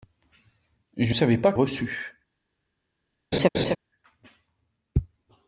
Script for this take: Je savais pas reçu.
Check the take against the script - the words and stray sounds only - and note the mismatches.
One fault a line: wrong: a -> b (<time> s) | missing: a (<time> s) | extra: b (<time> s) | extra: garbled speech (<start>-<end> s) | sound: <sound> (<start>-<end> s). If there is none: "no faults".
sound: laugh (3.3-3.8 s)